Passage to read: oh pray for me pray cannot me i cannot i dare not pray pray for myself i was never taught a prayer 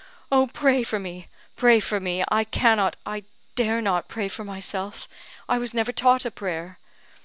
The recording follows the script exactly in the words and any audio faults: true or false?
false